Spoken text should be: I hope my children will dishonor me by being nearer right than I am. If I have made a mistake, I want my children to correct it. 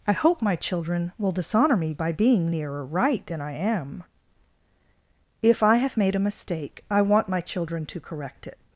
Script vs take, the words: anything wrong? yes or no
no